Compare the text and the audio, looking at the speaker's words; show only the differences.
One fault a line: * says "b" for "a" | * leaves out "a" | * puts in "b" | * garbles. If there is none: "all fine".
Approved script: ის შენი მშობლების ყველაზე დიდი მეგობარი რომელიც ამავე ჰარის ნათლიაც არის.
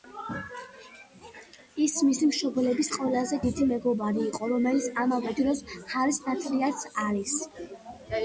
* says "მისი" for "შენი"
* puts in "იყო"
* puts in "დროს"